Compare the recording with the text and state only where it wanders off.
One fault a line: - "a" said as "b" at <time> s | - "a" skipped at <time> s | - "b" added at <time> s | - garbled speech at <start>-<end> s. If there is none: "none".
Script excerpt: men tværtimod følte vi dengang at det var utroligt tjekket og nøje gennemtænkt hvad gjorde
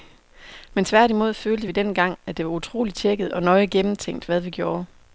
- "vi" added at 4.4 s